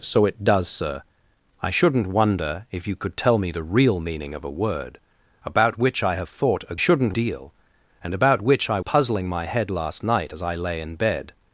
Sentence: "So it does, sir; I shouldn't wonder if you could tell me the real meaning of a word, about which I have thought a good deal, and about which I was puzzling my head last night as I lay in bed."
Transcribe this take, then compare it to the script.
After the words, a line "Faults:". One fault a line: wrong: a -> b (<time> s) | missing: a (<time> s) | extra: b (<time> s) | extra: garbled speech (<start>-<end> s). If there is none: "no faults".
"So it does, sir; I shouldn't wonder if you could tell me the real meaning of a word, about which I have thought a shouldn't deal, and about which I puzzling my head last night as I lay in bed."
Faults:
wrong: good -> shouldn't (6.8 s)
missing: was (8.8 s)